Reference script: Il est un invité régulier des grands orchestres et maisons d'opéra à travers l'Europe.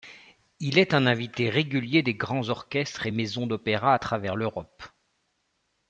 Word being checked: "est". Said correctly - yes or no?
yes